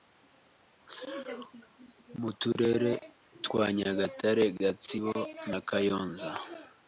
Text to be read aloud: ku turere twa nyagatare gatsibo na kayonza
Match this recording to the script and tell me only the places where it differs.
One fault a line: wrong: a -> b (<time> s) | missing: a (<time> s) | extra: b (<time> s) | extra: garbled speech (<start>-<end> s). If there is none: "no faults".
wrong: ku -> mu (2.2 s)